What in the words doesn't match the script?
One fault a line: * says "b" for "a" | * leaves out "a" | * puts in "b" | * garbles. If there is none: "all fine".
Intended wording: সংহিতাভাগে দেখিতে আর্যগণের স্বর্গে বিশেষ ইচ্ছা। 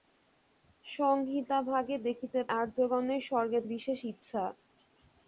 all fine